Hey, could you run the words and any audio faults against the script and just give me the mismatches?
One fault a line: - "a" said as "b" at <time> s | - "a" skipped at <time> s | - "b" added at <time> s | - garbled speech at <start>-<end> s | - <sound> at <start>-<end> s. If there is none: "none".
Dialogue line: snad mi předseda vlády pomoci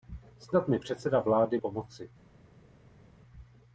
none